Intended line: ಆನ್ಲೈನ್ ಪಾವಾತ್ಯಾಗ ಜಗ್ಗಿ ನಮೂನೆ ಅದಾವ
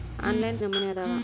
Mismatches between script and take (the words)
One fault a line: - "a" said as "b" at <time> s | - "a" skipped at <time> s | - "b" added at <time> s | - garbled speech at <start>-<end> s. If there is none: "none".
- "ಪಾವಾತ್ಯಾಗ ಜಗ್ಗಿ" skipped at 0.6 s